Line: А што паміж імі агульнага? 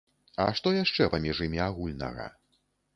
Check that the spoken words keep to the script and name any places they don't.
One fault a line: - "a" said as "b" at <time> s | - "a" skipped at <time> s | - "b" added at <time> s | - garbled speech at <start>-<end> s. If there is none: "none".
- "яшчэ" added at 0.8 s